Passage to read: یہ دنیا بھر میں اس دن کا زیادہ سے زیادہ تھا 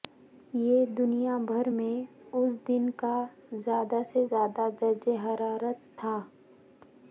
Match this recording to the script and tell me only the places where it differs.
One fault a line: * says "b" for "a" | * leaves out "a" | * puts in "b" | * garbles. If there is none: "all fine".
* puts in "درجہ حرارت"